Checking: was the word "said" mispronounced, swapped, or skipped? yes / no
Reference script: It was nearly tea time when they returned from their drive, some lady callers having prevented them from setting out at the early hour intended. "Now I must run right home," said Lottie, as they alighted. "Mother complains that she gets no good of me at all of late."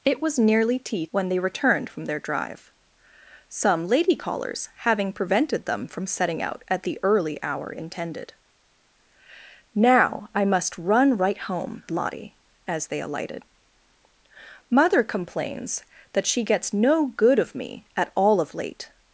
yes